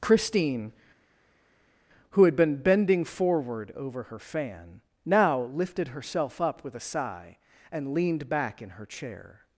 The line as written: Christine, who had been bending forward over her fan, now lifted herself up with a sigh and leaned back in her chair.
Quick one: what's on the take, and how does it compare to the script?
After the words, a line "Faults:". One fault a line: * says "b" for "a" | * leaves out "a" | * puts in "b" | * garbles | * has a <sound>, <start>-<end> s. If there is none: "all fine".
Christine, who had been bending forward over her fan, now lifted herself up with a sigh and leaned back in her chair.
Faults:
all fine